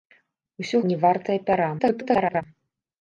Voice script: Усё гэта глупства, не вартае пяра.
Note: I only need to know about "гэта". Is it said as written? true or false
false